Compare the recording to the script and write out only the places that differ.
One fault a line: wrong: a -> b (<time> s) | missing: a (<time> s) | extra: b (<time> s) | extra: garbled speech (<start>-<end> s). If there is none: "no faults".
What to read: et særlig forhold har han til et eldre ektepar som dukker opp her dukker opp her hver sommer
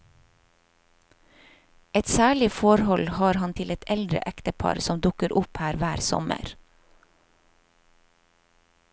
missing: dukker opp her (5.8 s)